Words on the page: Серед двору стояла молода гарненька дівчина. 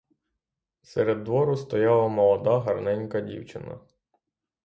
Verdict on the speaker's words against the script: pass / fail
pass